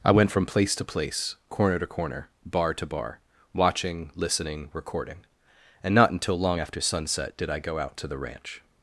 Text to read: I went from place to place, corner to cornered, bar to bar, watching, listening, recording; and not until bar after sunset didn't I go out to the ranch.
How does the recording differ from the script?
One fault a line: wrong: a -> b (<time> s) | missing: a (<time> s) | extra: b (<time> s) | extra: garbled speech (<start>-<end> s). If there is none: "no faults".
wrong: cornered -> corner (1.9 s)
wrong: bar -> long (6.4 s)
wrong: didn't -> did (7.4 s)